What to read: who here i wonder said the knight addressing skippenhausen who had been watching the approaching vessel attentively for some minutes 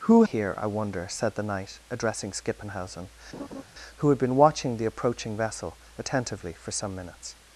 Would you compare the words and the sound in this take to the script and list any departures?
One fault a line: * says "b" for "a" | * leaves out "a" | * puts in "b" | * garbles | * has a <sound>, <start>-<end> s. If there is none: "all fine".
* has a laugh, 3.3-3.6 s